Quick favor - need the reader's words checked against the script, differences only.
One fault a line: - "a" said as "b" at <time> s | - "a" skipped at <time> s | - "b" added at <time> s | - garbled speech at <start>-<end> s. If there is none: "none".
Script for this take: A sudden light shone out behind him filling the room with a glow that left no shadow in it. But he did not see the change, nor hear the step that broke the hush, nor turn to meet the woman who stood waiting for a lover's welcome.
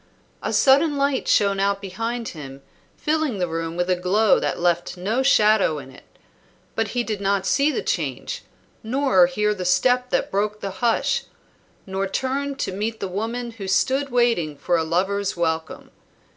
none